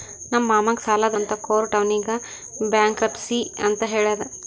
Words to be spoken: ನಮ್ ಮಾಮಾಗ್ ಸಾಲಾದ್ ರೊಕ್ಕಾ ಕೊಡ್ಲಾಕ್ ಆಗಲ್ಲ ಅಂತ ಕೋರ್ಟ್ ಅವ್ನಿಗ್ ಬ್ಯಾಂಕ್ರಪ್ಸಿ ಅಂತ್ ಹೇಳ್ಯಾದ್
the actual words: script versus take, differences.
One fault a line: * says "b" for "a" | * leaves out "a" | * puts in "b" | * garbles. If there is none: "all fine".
* leaves out "ರೊಕ್ಕಾ ಕೊಡ್ಲಾಕ್ ಆಗಲ್ಲ"